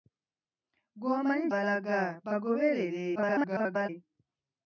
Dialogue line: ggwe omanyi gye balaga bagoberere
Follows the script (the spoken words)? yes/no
no